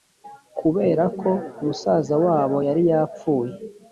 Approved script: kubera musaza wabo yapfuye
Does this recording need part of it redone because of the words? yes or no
yes